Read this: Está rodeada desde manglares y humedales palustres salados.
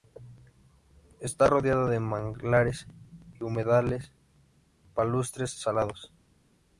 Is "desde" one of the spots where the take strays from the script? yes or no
yes